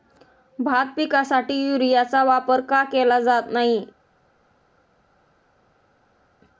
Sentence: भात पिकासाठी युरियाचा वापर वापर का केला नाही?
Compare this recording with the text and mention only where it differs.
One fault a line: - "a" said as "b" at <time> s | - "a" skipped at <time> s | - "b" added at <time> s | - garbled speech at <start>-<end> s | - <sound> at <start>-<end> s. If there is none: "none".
- "वापर" skipped at 2.6 s
- "जात" added at 3.2 s